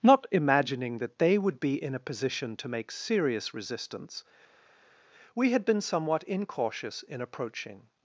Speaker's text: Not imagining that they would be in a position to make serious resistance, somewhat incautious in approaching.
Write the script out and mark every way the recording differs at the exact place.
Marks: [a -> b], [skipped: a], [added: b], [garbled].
Not imagining that they would be in a position to make serious resistance, [added: we had been] somewhat incautious in approaching.